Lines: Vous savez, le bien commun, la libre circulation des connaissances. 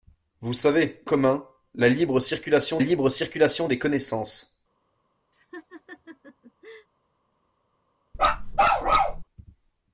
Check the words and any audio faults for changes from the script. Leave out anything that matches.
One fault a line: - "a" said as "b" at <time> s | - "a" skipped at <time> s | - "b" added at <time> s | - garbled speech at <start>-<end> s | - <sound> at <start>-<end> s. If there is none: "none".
- "le bien commun la" said as "commun la libre circulation" at 1.0 s
- laugh at 5.3-6.9 s
- bark at 8.1-9.2 s